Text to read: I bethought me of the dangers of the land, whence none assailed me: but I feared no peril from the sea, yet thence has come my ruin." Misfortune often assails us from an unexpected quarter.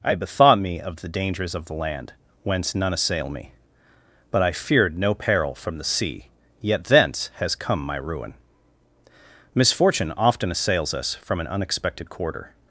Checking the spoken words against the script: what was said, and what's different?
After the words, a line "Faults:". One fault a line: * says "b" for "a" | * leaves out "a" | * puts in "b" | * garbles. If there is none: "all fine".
I bethought me of the dangers of the land, whence none assail me: but I feared no peril from the sea, yet thence has come my ruin." Misfortune often assails us from an unexpected quarter.
Faults:
* says "assail" for "assailed"